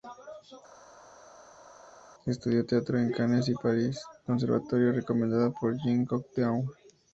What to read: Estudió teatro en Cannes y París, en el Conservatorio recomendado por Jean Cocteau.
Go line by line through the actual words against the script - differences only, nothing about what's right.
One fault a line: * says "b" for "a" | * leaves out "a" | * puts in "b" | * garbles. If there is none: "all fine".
* leaves out "en el"